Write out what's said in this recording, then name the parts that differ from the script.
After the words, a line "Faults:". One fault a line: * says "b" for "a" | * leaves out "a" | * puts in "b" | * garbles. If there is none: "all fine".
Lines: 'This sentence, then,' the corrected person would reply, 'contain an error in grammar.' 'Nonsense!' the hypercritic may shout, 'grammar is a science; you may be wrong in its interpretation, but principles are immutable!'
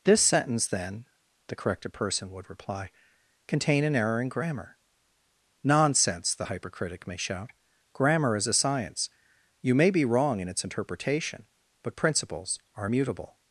'This sentence, then,' the corrected person would reply, 'contain an error in grammar.' 'Nonsense!' the hypercritic may shout, 'grammar is a science; you may be wrong in its interpretation, but principles are immutable!'
Faults:
all fine